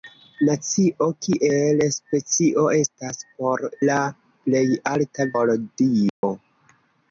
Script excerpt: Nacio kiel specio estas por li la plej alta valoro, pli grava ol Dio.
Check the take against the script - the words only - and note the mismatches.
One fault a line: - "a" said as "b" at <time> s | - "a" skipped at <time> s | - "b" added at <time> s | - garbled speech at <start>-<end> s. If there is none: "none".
- "li" skipped at 3.6 s
- "valoro pli grava" skipped at 5.3 s